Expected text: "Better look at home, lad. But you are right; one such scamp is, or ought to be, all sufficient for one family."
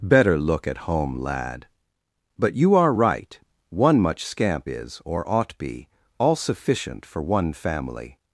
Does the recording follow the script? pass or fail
fail